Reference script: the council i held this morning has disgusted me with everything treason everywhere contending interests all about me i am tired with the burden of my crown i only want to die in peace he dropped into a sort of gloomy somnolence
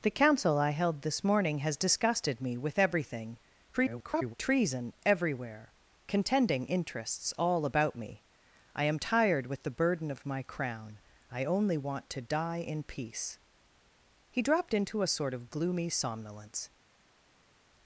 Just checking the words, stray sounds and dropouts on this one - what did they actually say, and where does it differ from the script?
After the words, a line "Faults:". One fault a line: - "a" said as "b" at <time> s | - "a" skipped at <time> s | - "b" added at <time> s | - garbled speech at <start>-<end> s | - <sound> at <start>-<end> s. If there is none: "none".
the council i held this morning has disgusted me with everything [garbled] treason everywhere contending interests all about me i am tired with the burden of my crown i only want to die in peace he dropped into a sort of gloomy somnolence
Faults:
- garbled speech at 3.7-4.3 s